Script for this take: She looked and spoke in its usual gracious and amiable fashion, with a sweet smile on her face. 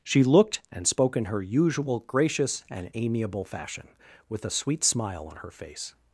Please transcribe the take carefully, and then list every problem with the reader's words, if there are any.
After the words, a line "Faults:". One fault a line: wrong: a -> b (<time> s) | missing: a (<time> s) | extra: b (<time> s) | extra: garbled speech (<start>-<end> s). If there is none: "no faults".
She looked and spoke in her usual gracious and amiable fashion, with a sweet smile on her face.
Faults:
wrong: its -> her (1.2 s)